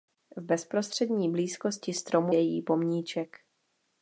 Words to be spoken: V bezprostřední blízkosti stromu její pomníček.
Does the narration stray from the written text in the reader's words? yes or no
no